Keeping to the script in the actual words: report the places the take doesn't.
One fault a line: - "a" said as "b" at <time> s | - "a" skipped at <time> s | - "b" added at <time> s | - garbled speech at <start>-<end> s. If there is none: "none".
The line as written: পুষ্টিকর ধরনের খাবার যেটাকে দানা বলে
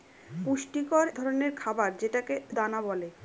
none